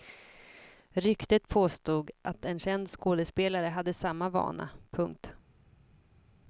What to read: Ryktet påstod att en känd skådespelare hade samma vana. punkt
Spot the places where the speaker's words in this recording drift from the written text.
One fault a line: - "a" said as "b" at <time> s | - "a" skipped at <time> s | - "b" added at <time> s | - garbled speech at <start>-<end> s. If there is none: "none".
none